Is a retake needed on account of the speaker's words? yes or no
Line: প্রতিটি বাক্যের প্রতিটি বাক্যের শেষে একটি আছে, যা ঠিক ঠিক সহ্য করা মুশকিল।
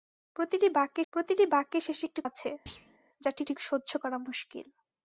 no